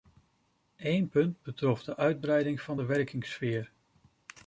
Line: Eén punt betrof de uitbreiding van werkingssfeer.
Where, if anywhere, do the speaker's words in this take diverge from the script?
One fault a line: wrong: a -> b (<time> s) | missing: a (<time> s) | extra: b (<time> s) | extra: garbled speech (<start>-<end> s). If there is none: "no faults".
extra: de (2.8 s)